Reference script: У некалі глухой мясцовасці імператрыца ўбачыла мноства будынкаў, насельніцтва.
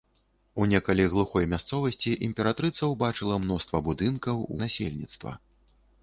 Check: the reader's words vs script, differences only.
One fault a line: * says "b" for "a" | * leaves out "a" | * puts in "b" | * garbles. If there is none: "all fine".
all fine